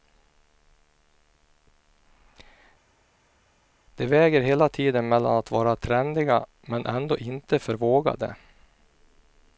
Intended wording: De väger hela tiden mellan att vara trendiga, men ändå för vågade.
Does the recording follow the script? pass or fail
fail